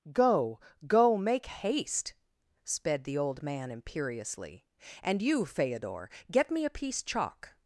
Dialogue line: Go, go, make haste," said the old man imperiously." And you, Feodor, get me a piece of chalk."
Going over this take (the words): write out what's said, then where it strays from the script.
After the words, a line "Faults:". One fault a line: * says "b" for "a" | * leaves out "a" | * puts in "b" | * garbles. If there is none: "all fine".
Go, go, make haste," sped the old man imperiously." And you, Feodor, get me a piece chalk."
Faults:
* says "sped" for "said"
* leaves out "of"